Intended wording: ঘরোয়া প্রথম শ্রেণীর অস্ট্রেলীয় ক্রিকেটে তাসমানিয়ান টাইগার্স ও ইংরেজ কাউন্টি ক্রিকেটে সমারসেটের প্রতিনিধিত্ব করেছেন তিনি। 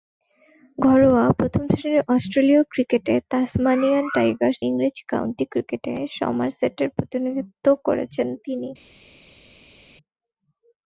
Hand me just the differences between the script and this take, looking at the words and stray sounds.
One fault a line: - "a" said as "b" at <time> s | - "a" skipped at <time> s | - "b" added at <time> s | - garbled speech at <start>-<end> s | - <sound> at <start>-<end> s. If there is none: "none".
- "ও" skipped at 4.6 s